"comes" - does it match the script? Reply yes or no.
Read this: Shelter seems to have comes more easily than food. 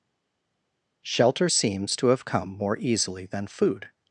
no